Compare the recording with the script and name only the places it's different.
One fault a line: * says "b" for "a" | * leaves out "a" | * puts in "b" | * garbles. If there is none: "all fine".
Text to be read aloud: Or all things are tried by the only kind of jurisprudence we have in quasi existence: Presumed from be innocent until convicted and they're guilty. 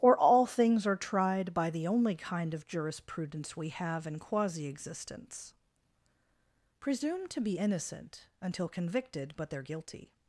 * says "to" for "from"
* says "but" for "and"